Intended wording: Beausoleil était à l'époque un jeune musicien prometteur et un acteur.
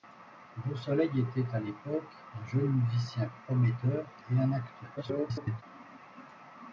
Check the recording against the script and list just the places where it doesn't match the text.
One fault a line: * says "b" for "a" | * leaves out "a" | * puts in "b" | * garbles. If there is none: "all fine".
* garbles